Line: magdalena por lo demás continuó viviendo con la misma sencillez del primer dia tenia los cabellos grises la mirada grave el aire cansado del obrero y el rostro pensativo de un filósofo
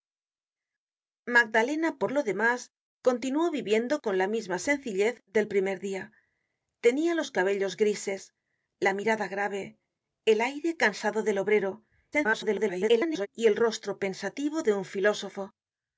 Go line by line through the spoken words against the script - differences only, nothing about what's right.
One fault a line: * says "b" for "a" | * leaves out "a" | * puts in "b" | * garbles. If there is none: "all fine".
* garbles